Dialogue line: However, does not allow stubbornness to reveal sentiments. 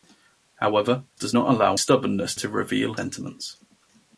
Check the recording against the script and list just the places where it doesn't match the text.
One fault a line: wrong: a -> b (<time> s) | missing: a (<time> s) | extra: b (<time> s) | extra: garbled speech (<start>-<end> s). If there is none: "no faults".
no faults